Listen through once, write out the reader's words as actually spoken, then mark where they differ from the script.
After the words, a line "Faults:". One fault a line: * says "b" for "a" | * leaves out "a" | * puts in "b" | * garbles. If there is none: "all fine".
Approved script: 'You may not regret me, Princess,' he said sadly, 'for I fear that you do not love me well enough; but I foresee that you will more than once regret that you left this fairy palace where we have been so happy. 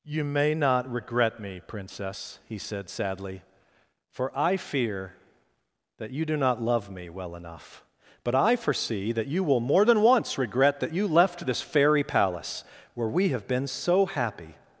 'You may not regret me, Princess,' he said sadly, 'for I fear that you do not love me well enough; but I foresee that you will more than once regret that you left this fairy palace where we have been so happy.
Faults:
all fine